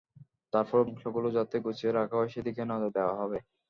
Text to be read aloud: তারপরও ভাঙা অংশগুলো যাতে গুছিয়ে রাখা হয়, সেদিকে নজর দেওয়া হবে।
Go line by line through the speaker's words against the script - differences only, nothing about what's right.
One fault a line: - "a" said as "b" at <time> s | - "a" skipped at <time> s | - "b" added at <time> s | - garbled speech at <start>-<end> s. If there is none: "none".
- "ভাঙা" skipped at 0.9 s